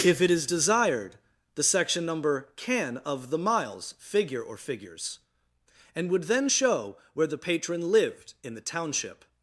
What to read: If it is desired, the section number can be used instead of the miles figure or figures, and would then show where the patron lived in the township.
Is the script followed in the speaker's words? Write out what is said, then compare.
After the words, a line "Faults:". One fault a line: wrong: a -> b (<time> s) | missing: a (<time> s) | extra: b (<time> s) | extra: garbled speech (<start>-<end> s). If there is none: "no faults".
If it is desired, the section number can of the miles figure or figures, and would then show where the patron lived in the township.
Faults:
missing: be used instead (3.0 s)